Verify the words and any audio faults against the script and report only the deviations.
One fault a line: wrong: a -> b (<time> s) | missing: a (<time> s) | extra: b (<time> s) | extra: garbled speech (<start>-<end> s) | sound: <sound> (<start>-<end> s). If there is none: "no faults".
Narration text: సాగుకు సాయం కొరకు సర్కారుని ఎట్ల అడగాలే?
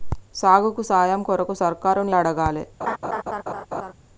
missing: ఎట్ల (2.1 s)
sound: laugh (2.8-3.9 s)